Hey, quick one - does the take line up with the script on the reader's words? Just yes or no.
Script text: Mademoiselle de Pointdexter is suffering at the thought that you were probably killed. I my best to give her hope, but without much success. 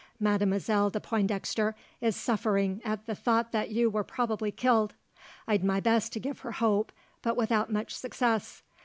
yes